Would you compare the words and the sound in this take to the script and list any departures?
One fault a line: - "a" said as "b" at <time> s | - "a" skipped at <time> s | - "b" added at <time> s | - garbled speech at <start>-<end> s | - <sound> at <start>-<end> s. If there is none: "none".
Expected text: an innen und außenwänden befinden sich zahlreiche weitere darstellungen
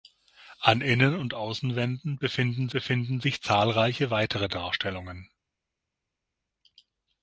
- "befinden" added at 2.7 s